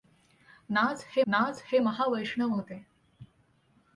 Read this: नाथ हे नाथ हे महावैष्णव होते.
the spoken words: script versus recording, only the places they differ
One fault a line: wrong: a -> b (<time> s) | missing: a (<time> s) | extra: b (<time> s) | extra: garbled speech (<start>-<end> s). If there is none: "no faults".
no faults